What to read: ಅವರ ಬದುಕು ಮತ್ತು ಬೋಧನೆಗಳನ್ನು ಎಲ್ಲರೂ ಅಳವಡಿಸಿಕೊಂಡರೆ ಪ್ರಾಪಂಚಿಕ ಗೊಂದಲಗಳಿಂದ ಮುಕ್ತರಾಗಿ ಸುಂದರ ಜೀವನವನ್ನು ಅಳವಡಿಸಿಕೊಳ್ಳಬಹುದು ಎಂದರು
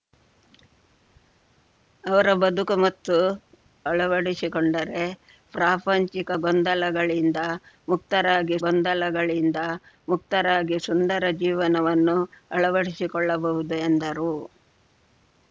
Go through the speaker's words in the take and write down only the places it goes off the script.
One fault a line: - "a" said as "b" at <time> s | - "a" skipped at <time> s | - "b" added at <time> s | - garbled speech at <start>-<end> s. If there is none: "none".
- "ಬೋಧನೆಗಳನ್ನು ಎಲ್ಲರೂ ಅಳವಡಿಸಿಕೊಂಡರೆ ಪ್ರಾಪಂಚಿಕ" said as "ಅಳವಡಿಸಿಕೊಂಡರೆ ಪ್ರಾಪಂಚಿಕ ಗೊಂದಲಗಳಿಂದ ಮುಕ್ತರಾಗಿ" at 3.8 s